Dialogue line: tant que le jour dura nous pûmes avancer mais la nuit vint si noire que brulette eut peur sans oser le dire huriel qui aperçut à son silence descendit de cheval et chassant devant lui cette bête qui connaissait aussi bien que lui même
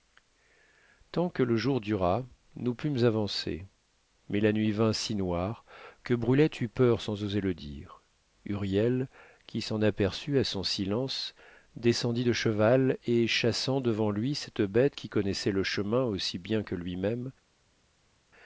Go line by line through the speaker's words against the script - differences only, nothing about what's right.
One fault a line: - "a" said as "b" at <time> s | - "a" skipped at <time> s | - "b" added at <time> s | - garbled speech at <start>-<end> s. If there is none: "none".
- "s'en" added at 9.6 s
- "le chemin" added at 15.5 s